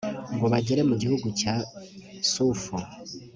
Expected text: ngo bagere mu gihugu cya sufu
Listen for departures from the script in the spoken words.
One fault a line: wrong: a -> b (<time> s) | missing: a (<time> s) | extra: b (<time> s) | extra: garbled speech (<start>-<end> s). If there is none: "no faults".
no faults